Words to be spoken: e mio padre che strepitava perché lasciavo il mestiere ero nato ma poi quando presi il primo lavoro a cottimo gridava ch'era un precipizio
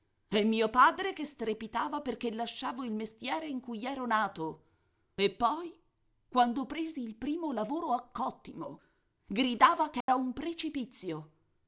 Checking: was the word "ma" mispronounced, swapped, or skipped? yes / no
yes